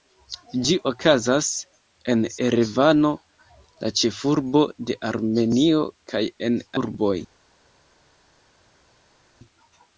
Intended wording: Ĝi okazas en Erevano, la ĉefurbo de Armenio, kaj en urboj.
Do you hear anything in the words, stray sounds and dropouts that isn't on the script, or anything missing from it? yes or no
no